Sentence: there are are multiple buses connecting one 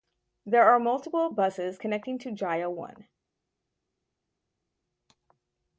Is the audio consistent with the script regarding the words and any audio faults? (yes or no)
no